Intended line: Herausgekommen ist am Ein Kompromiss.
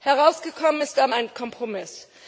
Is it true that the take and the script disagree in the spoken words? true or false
false